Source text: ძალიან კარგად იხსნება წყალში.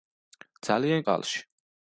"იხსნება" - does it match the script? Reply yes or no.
no